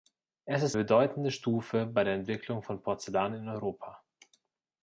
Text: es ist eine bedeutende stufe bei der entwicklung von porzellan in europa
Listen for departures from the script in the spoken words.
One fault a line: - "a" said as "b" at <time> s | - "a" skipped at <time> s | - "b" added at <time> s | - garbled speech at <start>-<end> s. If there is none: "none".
- "eine" skipped at 0.8 s